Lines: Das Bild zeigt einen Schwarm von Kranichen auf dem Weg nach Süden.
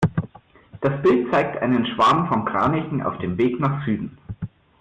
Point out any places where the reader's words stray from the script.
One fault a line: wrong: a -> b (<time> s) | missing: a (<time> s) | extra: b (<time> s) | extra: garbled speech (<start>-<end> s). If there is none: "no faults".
no faults